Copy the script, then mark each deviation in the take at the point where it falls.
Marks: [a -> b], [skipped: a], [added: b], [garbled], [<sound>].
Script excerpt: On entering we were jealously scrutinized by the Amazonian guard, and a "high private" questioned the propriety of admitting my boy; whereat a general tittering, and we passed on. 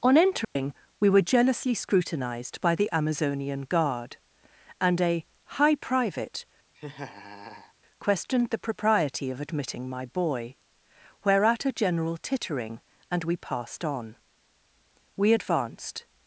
On entering [dropout] we were jealously scrutinized by the Amazonian guard, and a "high private" [laugh] questioned the propriety of admitting my boy; whereat a general tittering, and we passed on. [added: We advanced]